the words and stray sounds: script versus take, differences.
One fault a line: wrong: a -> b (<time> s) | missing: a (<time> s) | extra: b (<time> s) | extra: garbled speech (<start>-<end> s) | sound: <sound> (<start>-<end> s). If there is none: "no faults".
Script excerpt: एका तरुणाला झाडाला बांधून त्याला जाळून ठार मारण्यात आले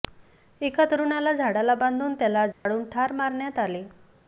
sound: dropout (2.5-2.7 s)